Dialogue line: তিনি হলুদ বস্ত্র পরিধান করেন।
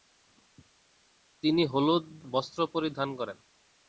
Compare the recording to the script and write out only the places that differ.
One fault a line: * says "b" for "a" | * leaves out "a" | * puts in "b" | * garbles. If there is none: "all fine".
all fine